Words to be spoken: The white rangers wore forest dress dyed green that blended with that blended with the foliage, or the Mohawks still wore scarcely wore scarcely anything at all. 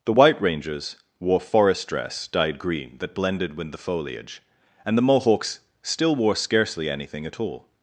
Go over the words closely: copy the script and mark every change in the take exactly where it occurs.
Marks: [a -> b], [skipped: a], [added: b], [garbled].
The white rangers wore forest dress dyed green that blended with [skipped: that blended with] the foliage, [or -> and] the Mohawks still wore scarcely [skipped: wore scarcely] anything at all.